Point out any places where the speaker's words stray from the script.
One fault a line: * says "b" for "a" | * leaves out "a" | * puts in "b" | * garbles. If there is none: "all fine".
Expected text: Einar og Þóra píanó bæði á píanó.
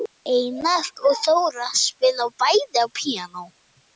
* says "spila" for "píanó"